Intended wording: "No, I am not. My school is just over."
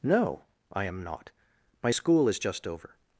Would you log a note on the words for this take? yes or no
no